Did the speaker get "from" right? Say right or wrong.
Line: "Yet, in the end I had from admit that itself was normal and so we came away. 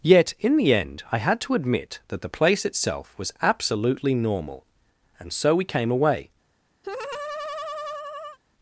wrong